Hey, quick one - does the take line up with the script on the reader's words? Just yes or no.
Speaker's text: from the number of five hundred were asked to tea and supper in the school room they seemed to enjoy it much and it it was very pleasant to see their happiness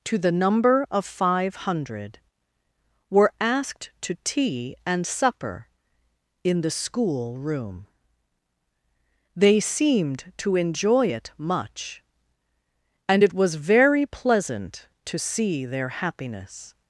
no